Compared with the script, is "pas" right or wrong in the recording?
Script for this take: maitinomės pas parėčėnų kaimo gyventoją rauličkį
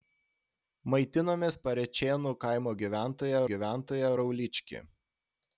wrong